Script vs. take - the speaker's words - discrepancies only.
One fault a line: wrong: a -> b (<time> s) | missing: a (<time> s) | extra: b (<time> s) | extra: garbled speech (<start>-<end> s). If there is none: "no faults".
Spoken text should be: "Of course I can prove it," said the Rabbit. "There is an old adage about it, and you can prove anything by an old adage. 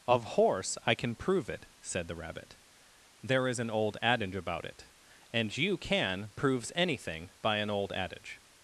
wrong: course -> horse (0.2 s)
wrong: prove -> proves (6.4 s)